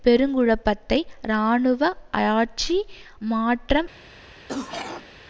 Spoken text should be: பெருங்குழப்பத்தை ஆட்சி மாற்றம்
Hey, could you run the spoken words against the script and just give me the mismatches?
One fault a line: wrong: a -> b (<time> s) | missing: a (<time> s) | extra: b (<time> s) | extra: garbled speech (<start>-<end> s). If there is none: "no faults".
extra: இராணுவ (1.2 s)